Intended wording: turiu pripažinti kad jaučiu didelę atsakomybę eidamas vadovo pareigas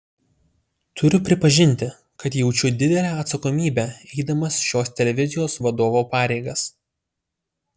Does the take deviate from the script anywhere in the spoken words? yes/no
yes